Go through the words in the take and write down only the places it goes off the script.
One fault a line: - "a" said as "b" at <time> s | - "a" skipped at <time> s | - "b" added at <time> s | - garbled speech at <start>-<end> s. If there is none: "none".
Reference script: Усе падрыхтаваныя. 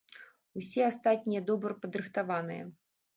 - "астатнія добра" added at 0.9 s